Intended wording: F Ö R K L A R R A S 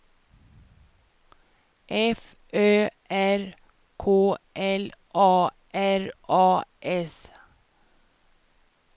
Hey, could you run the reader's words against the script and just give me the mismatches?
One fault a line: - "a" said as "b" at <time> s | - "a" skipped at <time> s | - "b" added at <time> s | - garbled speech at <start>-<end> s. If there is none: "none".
- "R" skipped at 6.1 s